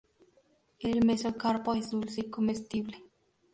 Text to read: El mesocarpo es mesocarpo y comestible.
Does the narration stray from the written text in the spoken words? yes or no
yes